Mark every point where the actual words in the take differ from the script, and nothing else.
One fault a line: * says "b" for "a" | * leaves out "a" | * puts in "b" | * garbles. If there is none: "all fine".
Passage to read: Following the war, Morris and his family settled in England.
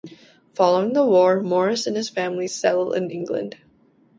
all fine